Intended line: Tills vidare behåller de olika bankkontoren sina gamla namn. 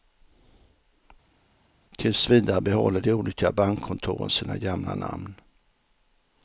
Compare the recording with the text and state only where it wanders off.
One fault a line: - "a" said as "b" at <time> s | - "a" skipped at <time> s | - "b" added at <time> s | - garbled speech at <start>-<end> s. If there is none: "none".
none